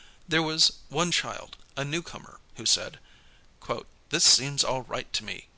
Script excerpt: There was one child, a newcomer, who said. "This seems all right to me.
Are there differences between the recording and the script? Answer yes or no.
no